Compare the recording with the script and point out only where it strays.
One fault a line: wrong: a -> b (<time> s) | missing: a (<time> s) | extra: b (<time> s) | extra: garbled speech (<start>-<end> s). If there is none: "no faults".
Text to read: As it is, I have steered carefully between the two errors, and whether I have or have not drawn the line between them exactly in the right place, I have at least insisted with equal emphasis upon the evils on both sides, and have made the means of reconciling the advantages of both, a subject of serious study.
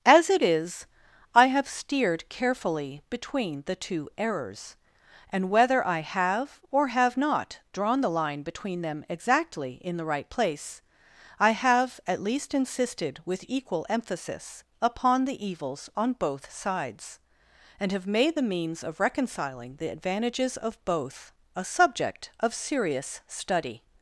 no faults